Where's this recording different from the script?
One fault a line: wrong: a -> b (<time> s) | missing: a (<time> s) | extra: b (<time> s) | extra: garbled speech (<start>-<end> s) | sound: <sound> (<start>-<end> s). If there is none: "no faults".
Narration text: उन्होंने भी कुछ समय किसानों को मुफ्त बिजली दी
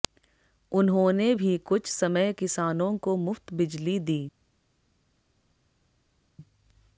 no faults